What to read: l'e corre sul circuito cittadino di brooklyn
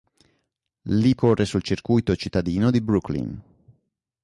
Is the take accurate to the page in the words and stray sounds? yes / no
yes